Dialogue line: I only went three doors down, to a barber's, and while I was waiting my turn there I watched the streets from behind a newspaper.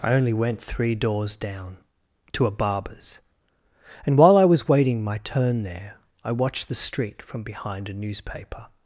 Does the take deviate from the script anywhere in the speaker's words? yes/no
yes